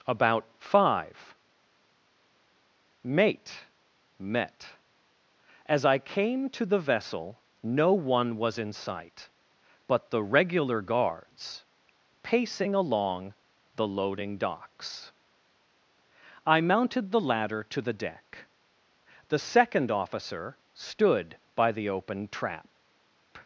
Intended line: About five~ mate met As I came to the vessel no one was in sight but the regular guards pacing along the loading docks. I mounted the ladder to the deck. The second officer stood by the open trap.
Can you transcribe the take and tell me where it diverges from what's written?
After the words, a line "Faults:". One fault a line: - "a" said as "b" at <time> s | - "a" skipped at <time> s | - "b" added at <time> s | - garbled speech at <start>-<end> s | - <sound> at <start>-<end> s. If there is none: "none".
About five~ mate met As I came to the vessel no one was in sight but the regular guards pacing along the loading docks. I mounted the ladder to the deck. The second officer stood by the open trap.
Faults:
none